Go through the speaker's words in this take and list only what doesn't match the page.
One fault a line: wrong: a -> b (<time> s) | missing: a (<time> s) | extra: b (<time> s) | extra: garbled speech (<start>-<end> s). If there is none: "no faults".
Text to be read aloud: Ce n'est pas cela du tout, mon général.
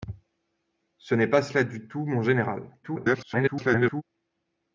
extra: garbled speech (2.8-4.0 s)